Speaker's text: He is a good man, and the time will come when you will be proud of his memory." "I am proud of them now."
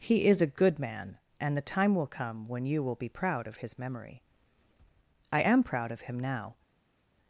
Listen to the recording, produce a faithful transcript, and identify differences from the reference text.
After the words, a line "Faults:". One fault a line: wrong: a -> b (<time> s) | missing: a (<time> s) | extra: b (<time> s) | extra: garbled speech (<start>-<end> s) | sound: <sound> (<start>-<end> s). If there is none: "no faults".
He is a good man, and the time will come when you will be proud of his memory." "I am proud of him now."
Faults:
wrong: them -> him (6.0 s)